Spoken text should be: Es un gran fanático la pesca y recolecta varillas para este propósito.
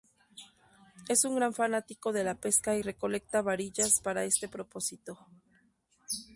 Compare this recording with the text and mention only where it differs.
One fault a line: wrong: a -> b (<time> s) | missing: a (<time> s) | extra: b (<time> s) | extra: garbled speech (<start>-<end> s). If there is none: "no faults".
extra: de (2.1 s)